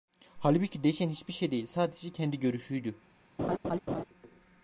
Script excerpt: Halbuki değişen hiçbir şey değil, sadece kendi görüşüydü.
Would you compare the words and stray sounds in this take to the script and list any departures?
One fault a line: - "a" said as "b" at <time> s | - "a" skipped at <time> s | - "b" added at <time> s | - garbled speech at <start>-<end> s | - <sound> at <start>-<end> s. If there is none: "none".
- laugh at 3.4-4.0 s